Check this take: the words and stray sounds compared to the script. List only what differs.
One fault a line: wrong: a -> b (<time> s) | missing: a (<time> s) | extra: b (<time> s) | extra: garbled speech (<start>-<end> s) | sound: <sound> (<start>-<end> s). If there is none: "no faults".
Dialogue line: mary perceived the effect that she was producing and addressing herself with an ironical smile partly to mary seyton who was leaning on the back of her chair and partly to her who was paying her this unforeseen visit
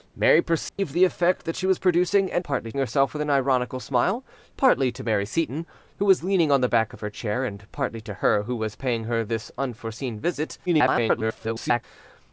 sound: dropout (0.7-0.8 s)
wrong: addressing -> partly (2.4 s)
extra: garbled speech (10.7-11.8 s)